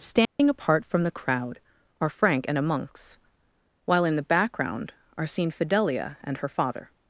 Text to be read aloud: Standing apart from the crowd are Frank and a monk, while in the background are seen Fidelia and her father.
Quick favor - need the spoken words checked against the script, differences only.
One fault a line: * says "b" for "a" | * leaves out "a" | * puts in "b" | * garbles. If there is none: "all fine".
* says "monks" for "monk"